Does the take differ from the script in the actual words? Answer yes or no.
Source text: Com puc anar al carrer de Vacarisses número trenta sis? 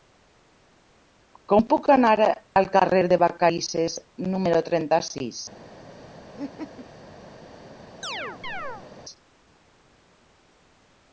no